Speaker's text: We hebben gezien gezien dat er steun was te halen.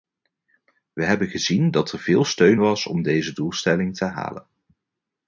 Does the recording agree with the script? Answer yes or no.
no